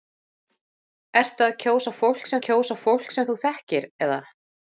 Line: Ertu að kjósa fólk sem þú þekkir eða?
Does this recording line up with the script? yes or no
no